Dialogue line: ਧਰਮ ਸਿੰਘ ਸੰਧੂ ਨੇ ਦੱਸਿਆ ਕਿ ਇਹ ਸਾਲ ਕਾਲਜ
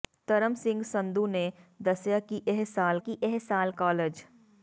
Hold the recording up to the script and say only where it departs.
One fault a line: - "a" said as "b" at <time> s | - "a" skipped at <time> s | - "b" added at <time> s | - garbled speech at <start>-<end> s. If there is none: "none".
- "ਕਿ ਇਹ ਸਾਲ" added at 3.0 s